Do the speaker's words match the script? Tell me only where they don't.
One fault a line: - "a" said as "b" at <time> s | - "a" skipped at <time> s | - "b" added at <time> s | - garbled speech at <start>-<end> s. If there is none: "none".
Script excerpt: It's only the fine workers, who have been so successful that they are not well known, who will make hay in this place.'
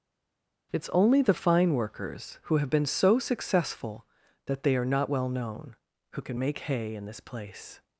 - "will" said as "can" at 6.2 s